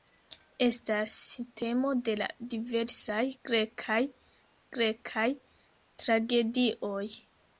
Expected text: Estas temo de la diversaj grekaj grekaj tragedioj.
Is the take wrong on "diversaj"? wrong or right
right